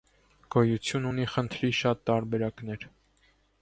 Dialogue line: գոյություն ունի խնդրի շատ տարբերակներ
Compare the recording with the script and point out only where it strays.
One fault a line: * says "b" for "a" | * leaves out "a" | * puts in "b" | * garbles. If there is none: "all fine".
all fine